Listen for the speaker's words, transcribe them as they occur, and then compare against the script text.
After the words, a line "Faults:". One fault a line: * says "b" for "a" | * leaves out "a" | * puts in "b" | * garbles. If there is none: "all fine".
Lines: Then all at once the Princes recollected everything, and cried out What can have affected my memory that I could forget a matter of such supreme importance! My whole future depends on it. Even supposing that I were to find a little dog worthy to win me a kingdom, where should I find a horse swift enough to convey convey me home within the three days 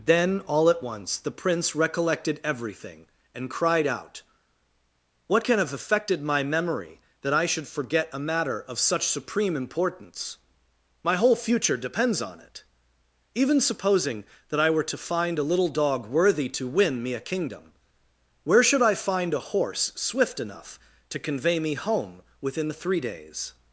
Then all at once the Prince recollected everything, and cried out What can have affected my memory that I should forget a matter of such supreme importance! My whole future depends on it. Even supposing that I were to find a little dog worthy to win me a kingdom, where should I find a horse swift enough to convey me home within the three days
Faults:
* says "Prince" for "Princes"
* says "should" for "could"
* leaves out "convey"